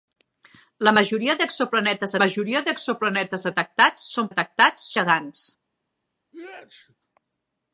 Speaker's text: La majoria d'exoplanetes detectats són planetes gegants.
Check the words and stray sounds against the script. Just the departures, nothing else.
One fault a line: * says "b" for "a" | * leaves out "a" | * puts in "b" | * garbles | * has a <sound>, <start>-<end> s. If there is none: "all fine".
* puts in "majoria d'exoplanetes"
* says "detectats" for "planetes"
* has a sneeze, 6.3-7.0 s